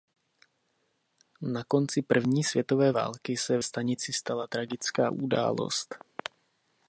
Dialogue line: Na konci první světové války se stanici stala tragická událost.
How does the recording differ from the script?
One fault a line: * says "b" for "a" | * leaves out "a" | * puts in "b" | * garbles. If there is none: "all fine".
all fine